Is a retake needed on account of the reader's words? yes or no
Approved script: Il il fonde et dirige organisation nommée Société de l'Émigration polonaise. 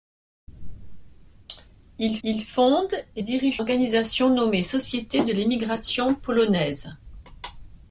no